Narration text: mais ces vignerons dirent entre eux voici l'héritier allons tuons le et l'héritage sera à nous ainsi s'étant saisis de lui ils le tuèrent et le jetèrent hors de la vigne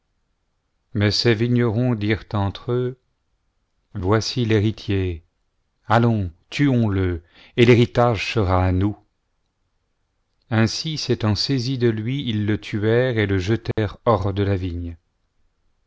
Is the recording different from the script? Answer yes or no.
no